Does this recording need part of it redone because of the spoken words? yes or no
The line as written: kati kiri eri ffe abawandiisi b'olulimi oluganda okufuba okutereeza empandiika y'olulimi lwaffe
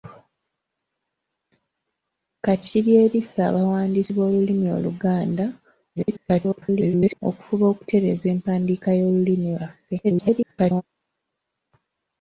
yes